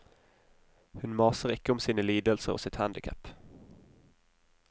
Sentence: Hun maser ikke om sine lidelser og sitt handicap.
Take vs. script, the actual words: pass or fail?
pass